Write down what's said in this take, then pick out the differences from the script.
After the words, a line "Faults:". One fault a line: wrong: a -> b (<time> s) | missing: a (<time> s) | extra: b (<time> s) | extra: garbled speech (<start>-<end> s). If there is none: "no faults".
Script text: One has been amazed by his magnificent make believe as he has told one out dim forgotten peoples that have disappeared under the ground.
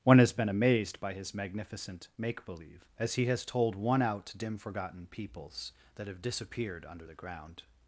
One has been amazed by his magnificent make believe as he has told one out dim forgotten peoples that have disappeared under the ground.
Faults:
no faults